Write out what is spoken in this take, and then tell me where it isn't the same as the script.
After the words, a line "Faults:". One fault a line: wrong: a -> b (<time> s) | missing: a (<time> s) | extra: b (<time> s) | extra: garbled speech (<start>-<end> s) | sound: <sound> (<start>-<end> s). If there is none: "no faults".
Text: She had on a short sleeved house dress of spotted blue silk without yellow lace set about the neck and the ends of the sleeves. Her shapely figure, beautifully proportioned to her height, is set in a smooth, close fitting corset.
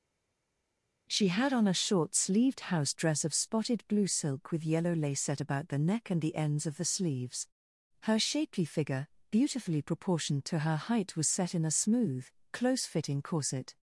She had on a short sleeved house dress of spotted blue silk with yellow lace set about the neck and the ends of the sleeves. Her shapely figure, beautifully proportioned to her height, was set in a smooth, close fitting corset.
Faults:
wrong: without -> with (4.5 s)
wrong: is -> was (11.1 s)